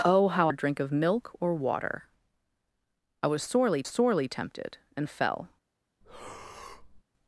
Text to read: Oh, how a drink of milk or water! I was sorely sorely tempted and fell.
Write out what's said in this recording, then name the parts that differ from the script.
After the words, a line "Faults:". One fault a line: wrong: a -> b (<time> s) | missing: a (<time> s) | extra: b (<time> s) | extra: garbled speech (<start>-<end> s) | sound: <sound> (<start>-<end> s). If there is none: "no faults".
Oh, how a drink of milk or water! I was sorely sorely tempted and fell.
Faults:
sound: breath (6.0-7.0 s)